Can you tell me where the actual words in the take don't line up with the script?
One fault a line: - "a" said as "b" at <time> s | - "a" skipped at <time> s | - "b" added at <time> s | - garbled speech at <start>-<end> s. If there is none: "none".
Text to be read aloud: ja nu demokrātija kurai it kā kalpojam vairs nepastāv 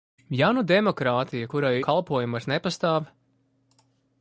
- "it kā" skipped at 1.7 s